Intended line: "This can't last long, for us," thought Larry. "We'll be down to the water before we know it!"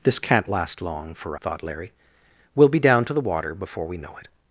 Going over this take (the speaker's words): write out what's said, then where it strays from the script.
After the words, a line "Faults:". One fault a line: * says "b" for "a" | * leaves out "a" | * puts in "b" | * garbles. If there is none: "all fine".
"This can't last long, for," thought Larry. "We'll be down to the water before we know it!"
Faults:
* leaves out "us"